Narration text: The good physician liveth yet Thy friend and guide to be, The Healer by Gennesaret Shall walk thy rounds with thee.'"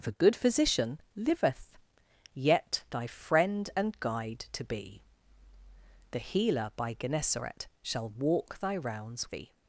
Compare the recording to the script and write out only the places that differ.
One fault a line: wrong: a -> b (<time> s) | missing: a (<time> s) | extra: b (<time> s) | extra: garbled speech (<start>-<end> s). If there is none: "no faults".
missing: with (9.3 s)